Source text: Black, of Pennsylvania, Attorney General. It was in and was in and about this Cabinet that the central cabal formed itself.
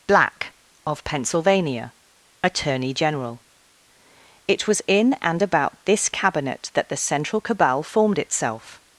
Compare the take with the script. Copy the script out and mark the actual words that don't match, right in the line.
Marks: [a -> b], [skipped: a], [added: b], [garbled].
Black, of Pennsylvania, Attorney General. It was in and [skipped: was in and] about this Cabinet that the central cabal formed itself.